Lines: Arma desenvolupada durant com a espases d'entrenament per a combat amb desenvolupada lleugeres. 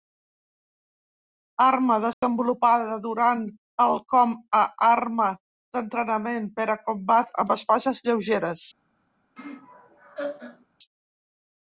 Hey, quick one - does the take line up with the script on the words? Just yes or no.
no